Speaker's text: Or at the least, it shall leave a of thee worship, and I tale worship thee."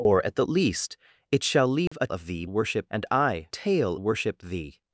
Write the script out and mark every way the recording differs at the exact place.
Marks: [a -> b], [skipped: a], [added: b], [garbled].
Or at the least, it shall leave a of thee worship, and I tale worship thee."